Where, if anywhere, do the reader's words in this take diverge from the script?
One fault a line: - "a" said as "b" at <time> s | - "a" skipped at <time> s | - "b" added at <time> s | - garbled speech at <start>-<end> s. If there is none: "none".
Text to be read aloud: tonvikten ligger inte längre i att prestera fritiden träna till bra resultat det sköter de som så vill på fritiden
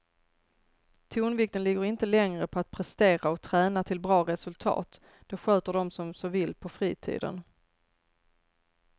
- "i" said as "på" at 2.5 s
- "fritiden" said as "och" at 3.3 s